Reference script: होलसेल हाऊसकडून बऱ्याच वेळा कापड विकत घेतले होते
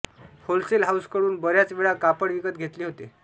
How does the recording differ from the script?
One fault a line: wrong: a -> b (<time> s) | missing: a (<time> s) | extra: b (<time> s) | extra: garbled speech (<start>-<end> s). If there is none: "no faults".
no faults